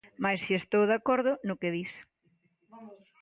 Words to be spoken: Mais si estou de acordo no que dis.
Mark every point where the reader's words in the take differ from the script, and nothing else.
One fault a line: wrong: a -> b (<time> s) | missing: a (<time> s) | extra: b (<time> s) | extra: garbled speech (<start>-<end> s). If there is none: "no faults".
no faults